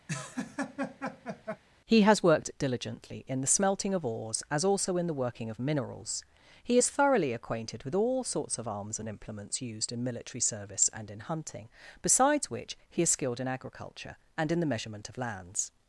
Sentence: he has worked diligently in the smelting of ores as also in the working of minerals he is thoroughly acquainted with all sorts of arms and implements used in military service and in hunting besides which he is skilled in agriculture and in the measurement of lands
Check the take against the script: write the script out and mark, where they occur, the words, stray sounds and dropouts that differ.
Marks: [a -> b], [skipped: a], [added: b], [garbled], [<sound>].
[laugh] he has worked diligently in the smelting of ores as also in the working of minerals he is thoroughly acquainted with all sorts of arms and implements used in military service and in hunting besides which he is skilled in agriculture and in the measurement of lands